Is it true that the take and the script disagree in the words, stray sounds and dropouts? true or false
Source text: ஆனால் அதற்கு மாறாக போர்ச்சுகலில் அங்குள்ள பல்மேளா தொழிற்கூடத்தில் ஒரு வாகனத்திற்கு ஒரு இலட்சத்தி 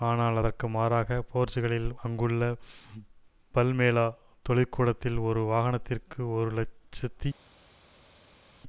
false